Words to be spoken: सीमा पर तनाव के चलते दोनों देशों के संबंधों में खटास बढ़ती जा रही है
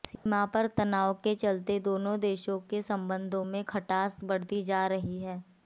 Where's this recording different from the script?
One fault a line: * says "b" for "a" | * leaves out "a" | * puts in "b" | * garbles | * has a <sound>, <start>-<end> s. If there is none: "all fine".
* has a dropout, 0.1-0.3 s